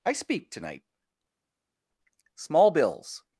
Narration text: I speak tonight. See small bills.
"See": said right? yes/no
no